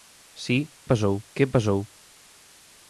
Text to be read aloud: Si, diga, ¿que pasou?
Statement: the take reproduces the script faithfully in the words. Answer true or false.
false